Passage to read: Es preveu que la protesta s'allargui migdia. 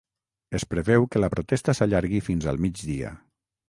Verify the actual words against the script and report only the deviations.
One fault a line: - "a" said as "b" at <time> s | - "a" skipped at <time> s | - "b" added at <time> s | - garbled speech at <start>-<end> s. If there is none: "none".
- "fins al" added at 2.3 s